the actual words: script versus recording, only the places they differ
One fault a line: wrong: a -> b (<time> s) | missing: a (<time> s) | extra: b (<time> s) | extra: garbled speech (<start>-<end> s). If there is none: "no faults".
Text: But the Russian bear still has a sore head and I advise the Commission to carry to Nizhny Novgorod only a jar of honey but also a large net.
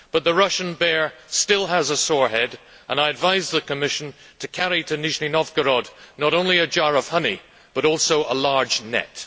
extra: not (6.2 s)